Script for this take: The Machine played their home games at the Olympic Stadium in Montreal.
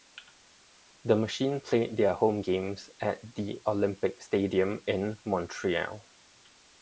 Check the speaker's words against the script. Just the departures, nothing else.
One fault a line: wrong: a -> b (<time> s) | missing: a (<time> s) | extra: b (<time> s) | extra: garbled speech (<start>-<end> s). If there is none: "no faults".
no faults